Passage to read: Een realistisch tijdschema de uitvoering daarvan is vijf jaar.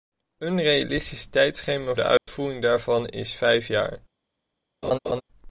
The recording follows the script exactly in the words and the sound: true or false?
false